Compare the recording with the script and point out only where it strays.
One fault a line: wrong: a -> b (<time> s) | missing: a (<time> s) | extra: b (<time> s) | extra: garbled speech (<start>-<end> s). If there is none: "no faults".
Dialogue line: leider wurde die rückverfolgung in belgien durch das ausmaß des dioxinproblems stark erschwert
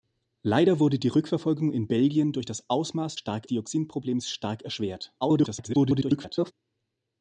wrong: des -> stark (3.1 s)
extra: garbled speech (5.2-6.5 s)